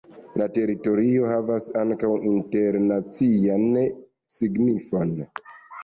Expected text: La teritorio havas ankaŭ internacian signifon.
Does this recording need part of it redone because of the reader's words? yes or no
no